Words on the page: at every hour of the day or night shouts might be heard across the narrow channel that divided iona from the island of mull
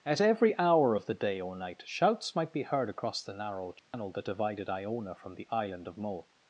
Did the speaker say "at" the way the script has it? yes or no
yes